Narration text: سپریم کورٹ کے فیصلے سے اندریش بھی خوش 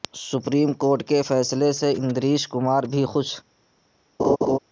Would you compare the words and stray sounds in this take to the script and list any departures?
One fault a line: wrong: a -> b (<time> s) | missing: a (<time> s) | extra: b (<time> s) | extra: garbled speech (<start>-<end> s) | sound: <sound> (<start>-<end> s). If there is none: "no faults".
extra: کمار (2.5 s)
sound: laugh (4.2-4.6 s)